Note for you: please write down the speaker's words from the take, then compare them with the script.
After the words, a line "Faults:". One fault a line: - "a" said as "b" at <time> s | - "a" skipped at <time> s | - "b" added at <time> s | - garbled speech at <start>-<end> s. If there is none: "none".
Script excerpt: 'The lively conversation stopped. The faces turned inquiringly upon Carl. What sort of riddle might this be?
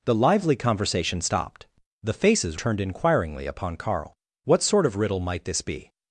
'The lively conversation stopped. The faces turned inquiringly upon Carl. What sort of riddle might this be?
Faults:
none